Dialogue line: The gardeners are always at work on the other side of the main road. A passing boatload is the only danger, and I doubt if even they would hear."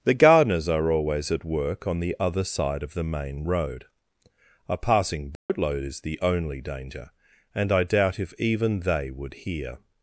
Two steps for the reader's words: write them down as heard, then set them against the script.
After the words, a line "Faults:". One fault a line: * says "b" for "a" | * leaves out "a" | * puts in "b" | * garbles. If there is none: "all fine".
The gardeners are always at work on the other side of the main road. A passing boatload is the only danger, and I doubt if even they would hear."
Faults:
all fine